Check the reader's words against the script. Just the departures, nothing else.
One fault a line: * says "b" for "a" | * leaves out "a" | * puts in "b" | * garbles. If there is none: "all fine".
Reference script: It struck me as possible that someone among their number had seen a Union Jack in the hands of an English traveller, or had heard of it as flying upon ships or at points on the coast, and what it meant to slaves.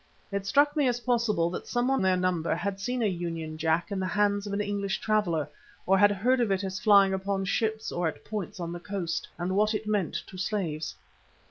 * leaves out "among"